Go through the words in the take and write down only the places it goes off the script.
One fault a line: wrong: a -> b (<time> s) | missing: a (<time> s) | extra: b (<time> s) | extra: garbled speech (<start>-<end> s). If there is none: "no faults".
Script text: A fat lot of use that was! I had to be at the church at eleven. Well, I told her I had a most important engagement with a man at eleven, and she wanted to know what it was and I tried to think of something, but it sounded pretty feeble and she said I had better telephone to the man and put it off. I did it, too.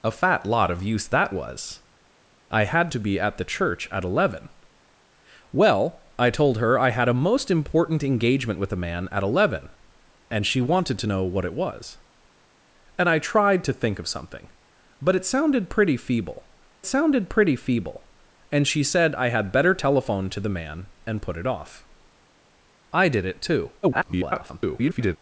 extra: sounded pretty feeble (16.8 s)
extra: garbled speech (23.8-25.2 s)